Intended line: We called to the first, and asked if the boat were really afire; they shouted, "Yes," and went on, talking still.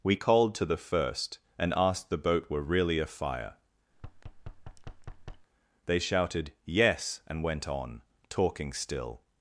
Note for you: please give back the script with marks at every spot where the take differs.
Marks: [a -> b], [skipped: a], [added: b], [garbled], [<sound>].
We called to the first, and asked [skipped: if] the boat were really afire; [thud] they shouted, "Yes," and went on, talking still.